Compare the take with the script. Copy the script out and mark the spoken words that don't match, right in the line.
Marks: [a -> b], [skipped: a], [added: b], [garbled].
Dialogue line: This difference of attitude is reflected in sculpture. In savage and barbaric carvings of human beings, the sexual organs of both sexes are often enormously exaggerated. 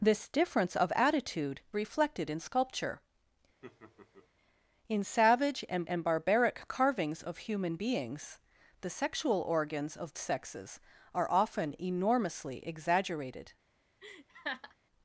This difference of attitude [skipped: is] reflected in sculpture. In savage and [added: and] barbaric carvings of human beings, the sexual organs of [skipped: both] sexes are often enormously exaggerated.